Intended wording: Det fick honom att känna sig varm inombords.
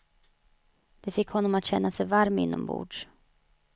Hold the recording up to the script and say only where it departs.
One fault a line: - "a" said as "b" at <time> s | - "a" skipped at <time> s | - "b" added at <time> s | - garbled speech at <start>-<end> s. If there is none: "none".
none